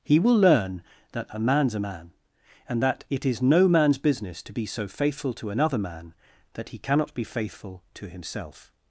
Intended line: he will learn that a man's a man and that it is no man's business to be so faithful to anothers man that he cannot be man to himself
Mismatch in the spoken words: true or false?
true